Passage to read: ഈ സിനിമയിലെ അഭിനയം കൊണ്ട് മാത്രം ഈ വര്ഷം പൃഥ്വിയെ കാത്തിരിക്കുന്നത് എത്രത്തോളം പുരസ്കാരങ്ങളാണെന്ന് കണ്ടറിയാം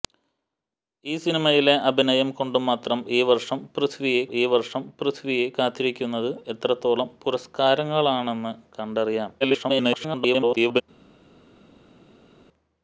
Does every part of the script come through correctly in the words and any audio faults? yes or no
no